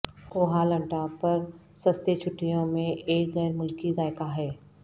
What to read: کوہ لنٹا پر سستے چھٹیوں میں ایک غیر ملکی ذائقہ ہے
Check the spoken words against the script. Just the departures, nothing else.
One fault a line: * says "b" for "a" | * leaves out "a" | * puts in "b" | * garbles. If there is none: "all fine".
all fine